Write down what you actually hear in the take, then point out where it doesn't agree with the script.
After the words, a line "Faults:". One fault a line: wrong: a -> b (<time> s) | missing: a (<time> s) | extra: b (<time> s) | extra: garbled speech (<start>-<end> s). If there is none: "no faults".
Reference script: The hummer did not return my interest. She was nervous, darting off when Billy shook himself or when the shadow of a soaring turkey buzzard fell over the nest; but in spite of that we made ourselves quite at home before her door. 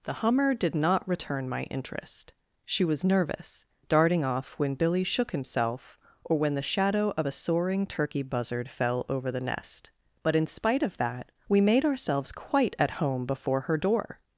The hummer did not return my interest. She was nervous, darting off when Billy shook himself or when the shadow of a soaring turkey buzzard fell over the nest; but in spite of that we made ourselves quite at home before her door.
Faults:
no faults